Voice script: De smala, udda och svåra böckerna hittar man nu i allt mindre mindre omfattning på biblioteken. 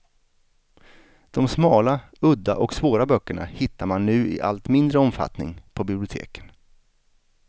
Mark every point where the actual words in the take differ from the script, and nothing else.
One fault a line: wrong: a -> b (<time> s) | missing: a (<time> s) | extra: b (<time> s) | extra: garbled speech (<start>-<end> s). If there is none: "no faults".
missing: mindre (5.0 s)